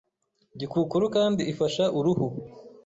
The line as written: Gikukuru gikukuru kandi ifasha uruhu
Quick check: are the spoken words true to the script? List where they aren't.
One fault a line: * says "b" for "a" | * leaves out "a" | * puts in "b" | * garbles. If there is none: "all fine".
* leaves out "gikukuru"